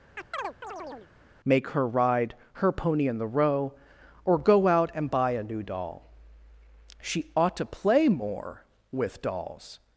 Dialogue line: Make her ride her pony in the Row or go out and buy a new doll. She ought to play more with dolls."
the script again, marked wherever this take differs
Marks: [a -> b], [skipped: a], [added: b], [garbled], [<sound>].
[chirp] Make her ride her pony in the Row or go out and buy a new doll. She ought to play more with dolls."